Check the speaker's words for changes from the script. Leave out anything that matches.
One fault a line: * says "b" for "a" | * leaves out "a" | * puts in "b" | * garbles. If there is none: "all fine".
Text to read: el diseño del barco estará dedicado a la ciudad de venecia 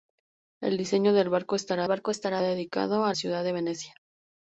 * puts in "barco estará"
* leaves out "la"